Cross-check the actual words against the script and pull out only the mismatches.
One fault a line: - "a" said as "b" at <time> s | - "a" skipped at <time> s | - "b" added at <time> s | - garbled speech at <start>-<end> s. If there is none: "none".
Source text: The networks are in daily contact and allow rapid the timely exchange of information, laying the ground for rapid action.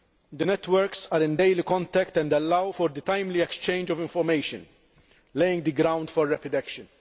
- "rapid" said as "for" at 2.7 s